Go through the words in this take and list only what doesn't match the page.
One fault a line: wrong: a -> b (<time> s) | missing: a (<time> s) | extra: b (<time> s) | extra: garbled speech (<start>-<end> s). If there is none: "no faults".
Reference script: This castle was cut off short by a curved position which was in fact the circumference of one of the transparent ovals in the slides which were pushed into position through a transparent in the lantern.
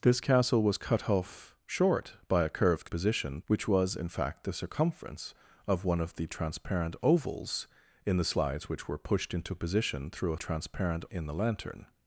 no faults